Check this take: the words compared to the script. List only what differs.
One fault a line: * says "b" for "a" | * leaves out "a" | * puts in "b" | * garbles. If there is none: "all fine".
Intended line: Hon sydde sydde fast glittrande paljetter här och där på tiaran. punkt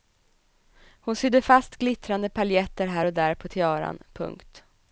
* leaves out "sydde"